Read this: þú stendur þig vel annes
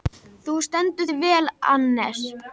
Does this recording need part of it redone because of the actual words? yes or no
no